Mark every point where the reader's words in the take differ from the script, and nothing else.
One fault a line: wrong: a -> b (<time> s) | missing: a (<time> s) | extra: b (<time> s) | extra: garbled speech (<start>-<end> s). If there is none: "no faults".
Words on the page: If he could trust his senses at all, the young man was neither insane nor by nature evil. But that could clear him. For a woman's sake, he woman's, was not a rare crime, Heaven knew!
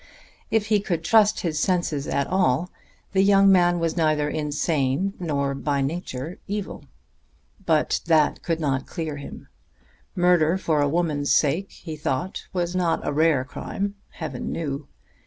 extra: not (8.6 s)
extra: Murder (10.2 s)
wrong: woman's -> thought (12.0 s)